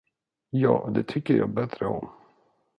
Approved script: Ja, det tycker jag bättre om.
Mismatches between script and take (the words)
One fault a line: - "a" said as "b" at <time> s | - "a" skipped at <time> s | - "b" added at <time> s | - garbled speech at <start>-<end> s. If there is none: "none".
none